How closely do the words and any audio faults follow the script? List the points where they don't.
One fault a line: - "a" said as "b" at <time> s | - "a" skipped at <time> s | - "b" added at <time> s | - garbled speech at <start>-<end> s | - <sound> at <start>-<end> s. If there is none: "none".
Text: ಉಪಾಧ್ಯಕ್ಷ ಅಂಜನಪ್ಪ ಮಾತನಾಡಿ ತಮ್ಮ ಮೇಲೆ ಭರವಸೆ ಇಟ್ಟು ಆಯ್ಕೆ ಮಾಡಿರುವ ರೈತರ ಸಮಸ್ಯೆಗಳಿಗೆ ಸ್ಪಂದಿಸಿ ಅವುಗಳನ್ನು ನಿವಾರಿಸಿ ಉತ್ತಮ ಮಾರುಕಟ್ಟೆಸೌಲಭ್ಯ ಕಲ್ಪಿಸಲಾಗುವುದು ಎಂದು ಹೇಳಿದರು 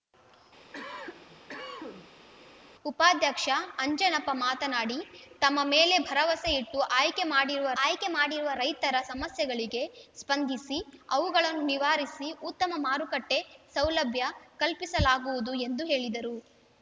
- cough at 0.7-2.3 s
- "ಆಯ್ಕೆ ಮಾಡಿರುವ" added at 7.8 s